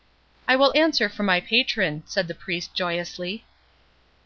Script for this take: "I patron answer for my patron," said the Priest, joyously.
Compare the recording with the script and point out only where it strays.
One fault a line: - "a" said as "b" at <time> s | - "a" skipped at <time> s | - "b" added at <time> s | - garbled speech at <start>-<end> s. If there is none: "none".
- "patron" said as "will" at 0.6 s